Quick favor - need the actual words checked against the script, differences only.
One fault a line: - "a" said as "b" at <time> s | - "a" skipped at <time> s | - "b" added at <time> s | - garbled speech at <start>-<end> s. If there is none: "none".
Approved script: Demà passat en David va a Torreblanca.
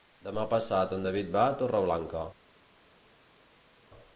none